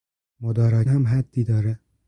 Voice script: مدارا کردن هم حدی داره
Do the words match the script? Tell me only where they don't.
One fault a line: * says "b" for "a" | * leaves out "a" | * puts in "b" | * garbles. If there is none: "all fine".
* leaves out "کردن"